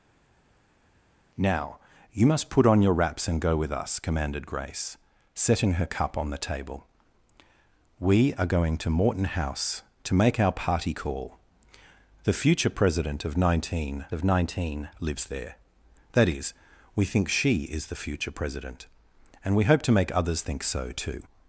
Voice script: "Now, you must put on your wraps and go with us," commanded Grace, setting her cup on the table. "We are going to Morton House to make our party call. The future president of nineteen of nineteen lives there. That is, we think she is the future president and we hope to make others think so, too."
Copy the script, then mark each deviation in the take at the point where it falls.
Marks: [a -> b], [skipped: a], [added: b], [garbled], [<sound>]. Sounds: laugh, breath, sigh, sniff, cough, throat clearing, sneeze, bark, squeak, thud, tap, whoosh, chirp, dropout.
"Now, you must put on your wraps and go with us," commanded Grace, setting her cup on the table. "We are going to Morton House to make our party call. The future president of nineteen of nineteen lives there. That is, we think she is the future president and we hope to make others think so, too."